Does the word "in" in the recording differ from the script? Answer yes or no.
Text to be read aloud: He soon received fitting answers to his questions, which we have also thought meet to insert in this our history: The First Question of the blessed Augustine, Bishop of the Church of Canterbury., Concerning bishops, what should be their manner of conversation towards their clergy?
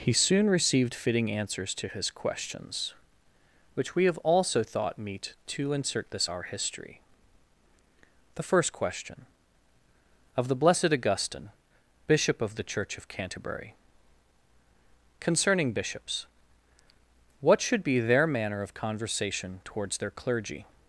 yes